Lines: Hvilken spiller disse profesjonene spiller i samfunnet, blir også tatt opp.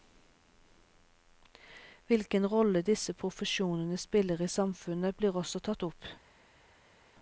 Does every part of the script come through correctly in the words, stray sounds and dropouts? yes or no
no